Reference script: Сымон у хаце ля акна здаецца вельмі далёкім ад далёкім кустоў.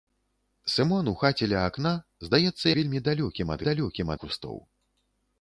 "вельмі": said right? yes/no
yes